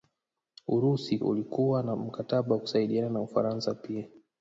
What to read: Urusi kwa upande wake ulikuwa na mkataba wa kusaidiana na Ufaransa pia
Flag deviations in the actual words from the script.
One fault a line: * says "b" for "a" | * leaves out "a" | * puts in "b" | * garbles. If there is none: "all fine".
* leaves out "kwa upande wake"